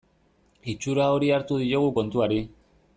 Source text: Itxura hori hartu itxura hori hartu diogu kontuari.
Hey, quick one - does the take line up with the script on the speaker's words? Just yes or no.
no